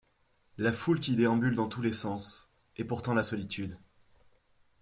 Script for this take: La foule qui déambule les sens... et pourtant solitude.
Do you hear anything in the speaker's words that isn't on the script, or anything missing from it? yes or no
yes